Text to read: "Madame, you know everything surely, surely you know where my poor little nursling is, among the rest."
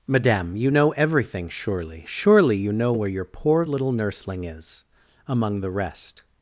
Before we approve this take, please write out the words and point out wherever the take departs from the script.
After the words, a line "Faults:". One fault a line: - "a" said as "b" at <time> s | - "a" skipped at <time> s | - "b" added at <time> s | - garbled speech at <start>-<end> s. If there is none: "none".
"Madame, you know everything surely, surely you know where your poor little nursling is, among the rest."
Faults:
- "my" said as "your" at 3.1 s